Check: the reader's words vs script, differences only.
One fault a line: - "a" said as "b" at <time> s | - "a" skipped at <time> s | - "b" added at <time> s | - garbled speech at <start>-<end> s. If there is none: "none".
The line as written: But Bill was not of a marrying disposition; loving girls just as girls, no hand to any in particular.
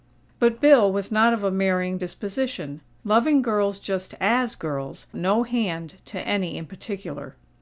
none